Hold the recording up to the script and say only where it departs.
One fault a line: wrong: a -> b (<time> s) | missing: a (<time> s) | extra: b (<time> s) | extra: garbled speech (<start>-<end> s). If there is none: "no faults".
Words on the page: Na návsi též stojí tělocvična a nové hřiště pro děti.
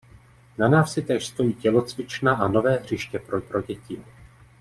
extra: pro (3.4 s)